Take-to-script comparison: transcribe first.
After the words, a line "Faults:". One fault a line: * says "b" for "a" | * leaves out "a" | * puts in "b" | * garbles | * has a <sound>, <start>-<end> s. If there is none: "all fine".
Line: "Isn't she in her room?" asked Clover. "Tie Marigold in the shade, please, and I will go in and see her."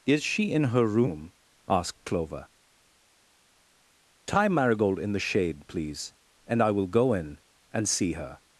"Is she in her room?" asked Clover. "Tie Marigold in the shade, please, and I will go in and see her."
Faults:
* says "Is" for "Isn't"